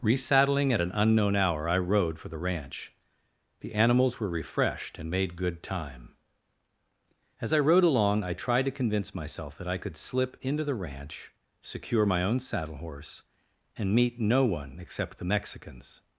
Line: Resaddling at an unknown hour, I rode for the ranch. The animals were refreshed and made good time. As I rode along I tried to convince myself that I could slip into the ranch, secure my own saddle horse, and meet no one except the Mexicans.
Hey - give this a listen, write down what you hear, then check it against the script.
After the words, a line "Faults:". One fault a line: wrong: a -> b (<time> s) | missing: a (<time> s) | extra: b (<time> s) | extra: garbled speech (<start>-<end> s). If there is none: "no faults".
Resaddling at an unknown hour, I rode for the ranch. The animals were refreshed and made good time. As I rode along I tried to convince myself that I could slip into the ranch, secure my own saddle horse, and meet no one except the Mexicans.
Faults:
no faults